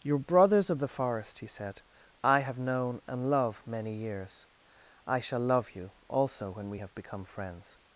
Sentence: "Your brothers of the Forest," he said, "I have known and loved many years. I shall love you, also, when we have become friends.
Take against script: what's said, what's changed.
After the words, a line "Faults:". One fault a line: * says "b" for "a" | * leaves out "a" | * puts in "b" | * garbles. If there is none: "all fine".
"Your brothers of the Forest," he said, "I have known and love many years. I shall love you, also, when we have become friends.
Faults:
* says "love" for "loved"